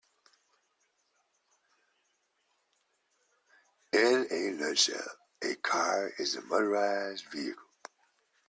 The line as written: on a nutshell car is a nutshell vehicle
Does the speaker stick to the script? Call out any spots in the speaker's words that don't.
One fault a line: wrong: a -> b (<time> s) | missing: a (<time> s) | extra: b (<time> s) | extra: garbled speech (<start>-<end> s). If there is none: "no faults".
wrong: on -> in (3.9 s)
extra: a (5.4 s)
wrong: nutshell -> motorized (6.4 s)